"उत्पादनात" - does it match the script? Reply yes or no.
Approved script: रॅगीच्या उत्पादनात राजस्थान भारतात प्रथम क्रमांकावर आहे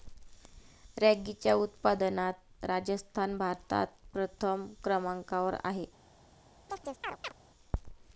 yes